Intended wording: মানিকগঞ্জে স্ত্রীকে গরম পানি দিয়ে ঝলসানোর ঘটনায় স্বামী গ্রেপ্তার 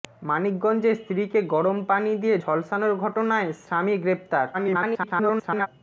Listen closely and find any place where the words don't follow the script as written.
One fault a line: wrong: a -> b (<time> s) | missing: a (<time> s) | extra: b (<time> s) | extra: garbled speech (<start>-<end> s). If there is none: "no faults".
extra: garbled speech (4.5-5.7 s)